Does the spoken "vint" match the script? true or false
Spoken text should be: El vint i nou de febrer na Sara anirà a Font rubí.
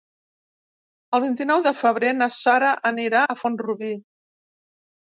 true